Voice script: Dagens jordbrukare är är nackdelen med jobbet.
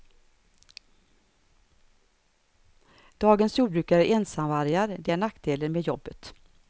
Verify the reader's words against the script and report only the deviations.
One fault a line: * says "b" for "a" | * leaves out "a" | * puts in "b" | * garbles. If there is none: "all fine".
* puts in "ensamvargar det"